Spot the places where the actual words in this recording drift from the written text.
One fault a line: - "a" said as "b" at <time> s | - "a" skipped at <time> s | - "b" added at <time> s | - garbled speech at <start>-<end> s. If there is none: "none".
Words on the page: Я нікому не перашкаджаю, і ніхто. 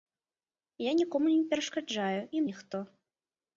none